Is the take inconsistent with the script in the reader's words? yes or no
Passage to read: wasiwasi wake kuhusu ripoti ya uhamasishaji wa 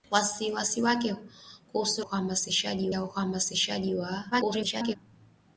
yes